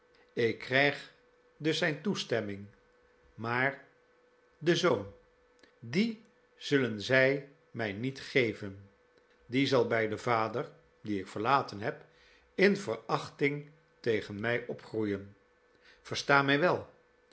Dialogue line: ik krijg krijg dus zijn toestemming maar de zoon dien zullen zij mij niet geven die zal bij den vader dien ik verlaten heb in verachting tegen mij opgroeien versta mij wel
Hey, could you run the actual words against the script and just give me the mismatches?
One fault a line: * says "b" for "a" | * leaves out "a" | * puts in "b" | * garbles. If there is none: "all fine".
* leaves out "krijg"